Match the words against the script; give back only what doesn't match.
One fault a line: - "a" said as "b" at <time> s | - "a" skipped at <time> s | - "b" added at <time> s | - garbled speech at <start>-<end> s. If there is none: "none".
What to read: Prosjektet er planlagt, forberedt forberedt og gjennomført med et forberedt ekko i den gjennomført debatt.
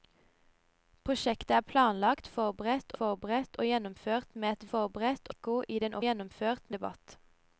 none